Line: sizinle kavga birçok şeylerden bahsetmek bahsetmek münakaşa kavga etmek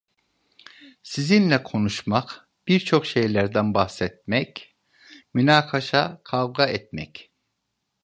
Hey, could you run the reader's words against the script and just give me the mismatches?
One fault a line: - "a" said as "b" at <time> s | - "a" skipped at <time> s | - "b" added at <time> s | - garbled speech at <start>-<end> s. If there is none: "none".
- "kavga" said as "konuşmak" at 1.6 s
- "bahsetmek" skipped at 4.7 s